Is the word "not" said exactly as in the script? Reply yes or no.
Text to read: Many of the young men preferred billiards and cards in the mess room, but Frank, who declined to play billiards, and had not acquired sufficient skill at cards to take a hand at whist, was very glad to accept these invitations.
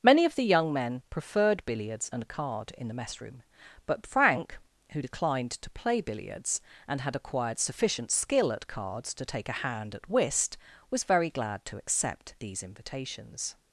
no